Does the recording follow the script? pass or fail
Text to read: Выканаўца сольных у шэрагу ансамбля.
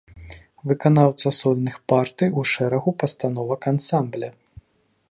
fail